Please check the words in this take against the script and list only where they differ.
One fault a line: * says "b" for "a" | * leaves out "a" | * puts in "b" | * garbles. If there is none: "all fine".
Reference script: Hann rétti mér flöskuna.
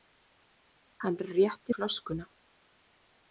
* leaves out "mér"